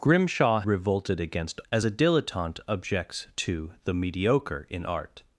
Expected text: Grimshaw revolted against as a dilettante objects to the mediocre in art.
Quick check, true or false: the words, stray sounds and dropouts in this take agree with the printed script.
true